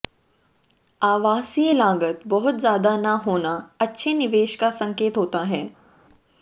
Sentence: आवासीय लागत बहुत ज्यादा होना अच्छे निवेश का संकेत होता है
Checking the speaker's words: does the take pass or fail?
fail